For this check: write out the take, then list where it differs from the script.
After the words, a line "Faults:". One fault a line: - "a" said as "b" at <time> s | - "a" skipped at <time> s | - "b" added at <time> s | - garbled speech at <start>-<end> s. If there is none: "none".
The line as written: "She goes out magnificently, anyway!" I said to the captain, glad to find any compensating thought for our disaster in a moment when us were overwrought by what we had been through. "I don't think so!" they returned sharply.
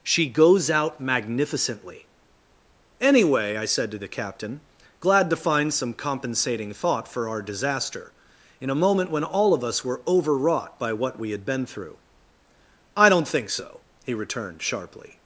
"She goes out magnificently, anyway!" I said to the captain, glad to find some compensating thought for our disaster in a moment when all of us were overwrought by what we had been through. "I don't think so!" he returned sharply.
Faults:
- "any" said as "some" at 5.7 s
- "all of" added at 9.2 s
- "they" said as "he" at 14.0 s